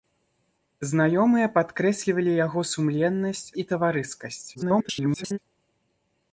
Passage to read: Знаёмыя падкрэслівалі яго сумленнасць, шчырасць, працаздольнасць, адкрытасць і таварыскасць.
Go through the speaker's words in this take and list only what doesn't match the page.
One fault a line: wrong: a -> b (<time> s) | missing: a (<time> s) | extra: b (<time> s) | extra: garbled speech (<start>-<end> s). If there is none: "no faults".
missing: шчырасць працаздольнасць адкрытасць (3.4 s)
extra: garbled speech (4.5-5.4 s)